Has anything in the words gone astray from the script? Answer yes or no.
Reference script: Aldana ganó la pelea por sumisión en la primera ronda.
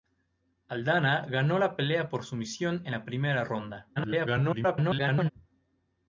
yes